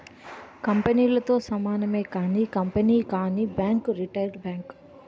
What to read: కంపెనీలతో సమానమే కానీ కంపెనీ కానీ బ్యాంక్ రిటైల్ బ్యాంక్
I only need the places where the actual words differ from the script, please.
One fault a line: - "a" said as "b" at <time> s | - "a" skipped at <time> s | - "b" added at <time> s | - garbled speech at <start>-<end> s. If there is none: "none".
none